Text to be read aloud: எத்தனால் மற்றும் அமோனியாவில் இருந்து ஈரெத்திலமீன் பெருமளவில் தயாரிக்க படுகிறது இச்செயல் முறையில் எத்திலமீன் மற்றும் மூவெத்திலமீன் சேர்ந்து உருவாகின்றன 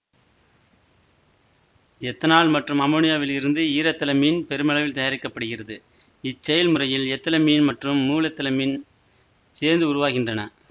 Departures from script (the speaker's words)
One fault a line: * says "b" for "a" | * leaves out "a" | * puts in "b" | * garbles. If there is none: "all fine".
all fine